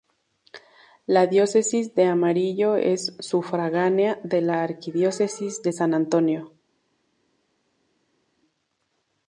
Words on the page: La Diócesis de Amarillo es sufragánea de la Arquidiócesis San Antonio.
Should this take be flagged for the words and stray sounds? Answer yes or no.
yes